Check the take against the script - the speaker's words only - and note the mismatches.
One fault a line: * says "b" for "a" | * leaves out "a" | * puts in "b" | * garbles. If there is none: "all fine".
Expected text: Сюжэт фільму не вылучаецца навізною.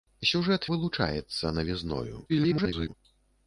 * leaves out "фільму не"
* garbles